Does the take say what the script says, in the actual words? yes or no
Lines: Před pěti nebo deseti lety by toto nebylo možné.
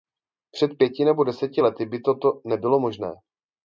yes